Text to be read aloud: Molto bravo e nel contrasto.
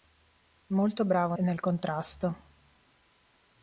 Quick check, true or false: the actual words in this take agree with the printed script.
true